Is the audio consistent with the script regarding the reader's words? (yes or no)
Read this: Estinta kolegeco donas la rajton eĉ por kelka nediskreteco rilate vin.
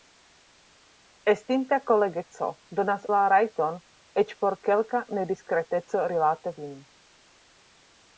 yes